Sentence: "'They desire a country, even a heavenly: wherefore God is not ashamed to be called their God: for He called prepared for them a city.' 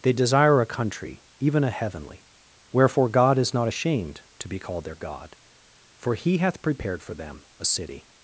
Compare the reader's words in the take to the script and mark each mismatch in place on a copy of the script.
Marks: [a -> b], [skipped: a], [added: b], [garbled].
"'They desire a country, even a heavenly: wherefore God is not ashamed to be called their God: for He [called -> hath] prepared for them a city.'